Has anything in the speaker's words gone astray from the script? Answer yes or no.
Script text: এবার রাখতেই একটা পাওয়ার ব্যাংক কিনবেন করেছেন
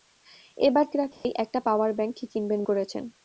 no